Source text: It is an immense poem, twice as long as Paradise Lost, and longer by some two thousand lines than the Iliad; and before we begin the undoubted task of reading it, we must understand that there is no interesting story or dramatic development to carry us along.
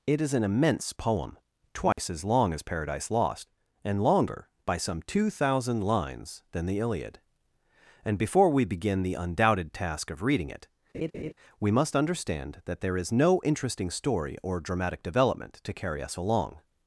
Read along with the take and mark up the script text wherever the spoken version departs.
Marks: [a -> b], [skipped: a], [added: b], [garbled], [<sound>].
It is an immense poem, twice [dropout] as long as Paradise Lost, and longer by some two thousand lines than the Iliad; and before we begin the undoubted task of reading it, [laugh] we must understand that there is no interesting story or dramatic development to carry us along.